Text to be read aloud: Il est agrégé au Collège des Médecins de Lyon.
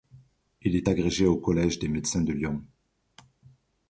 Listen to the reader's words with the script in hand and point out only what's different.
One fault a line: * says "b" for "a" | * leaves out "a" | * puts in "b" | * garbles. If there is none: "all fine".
all fine